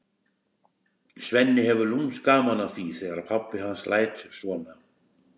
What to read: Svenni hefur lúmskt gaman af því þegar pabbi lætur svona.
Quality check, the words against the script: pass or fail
fail